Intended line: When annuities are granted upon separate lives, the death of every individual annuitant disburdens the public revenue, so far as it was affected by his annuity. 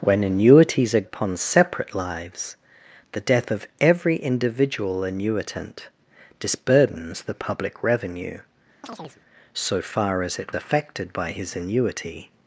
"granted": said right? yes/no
no